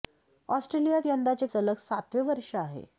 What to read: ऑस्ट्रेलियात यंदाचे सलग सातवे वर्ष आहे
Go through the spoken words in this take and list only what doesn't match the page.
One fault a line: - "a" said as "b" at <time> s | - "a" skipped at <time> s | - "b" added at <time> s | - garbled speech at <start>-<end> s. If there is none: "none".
none